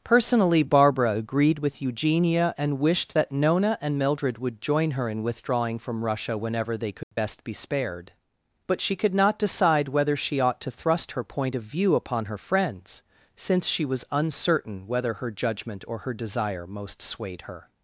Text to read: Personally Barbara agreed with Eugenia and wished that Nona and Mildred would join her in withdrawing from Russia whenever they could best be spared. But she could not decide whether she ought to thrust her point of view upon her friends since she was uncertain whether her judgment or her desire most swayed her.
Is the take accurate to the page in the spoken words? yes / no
yes